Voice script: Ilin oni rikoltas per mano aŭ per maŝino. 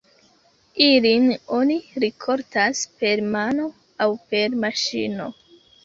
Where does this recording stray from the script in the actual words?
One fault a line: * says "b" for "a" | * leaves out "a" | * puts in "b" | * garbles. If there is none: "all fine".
all fine